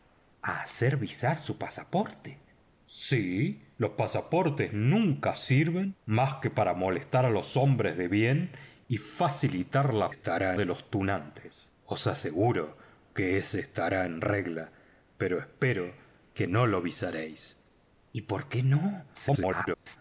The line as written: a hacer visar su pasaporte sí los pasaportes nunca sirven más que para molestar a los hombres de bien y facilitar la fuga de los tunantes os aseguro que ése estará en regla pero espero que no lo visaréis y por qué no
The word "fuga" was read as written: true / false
false